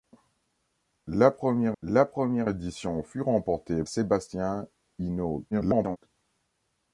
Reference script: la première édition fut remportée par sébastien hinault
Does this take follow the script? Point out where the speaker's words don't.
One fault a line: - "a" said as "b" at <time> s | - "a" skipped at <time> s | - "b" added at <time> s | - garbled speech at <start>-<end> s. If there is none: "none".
- "la première" added at 1.8 s
- "par" skipped at 3.8 s
- garbled speech at 5.5-6.0 s